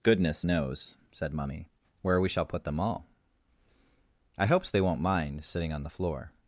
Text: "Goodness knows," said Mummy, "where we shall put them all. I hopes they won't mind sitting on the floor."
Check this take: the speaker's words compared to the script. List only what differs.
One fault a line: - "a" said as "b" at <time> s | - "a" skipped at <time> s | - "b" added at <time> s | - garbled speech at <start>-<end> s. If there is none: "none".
none